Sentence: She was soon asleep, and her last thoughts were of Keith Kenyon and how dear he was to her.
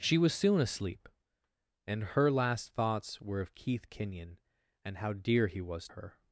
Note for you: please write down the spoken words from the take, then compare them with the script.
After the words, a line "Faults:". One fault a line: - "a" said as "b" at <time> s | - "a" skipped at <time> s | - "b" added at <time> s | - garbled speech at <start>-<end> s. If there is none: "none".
She was soon asleep, and her last thoughts were of Keith Kenyon and how dear he was her.
Faults:
- "to" skipped at 5.9 s